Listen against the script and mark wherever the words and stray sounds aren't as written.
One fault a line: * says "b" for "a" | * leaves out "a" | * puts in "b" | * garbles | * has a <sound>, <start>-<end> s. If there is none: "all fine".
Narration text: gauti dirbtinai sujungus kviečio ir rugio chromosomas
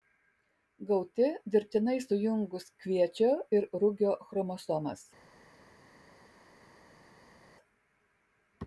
all fine